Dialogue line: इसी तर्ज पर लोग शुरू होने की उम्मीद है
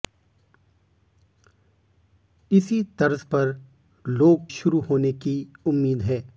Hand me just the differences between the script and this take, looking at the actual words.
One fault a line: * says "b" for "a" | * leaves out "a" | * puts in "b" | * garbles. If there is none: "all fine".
all fine